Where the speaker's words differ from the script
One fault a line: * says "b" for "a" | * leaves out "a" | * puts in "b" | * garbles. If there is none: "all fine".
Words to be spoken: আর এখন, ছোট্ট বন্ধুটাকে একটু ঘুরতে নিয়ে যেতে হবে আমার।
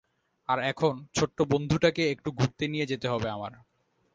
all fine